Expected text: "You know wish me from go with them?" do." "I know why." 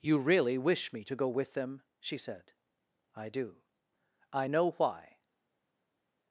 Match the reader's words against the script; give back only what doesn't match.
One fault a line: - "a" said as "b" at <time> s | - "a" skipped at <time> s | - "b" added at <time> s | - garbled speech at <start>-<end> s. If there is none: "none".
- "know" said as "really" at 0.2 s
- "from" said as "to" at 1.0 s
- "she said I" added at 2.0 s